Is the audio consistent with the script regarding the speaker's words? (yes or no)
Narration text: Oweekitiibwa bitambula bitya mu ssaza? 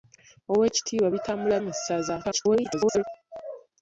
no